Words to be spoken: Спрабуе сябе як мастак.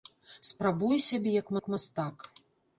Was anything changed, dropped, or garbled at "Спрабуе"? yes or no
no